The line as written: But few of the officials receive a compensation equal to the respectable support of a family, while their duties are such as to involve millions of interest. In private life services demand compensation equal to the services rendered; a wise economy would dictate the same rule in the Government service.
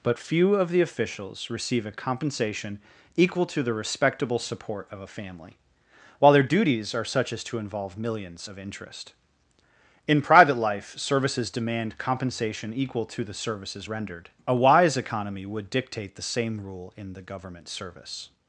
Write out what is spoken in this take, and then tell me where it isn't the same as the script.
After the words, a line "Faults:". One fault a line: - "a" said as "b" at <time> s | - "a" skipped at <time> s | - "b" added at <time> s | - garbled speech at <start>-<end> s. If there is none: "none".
But few of the officials receive a compensation equal to the respectable support of a family, while their duties are such as to involve millions of interest. In private life services demand compensation equal to the services rendered; a wise economy would dictate the same rule in the Government service.
Faults:
none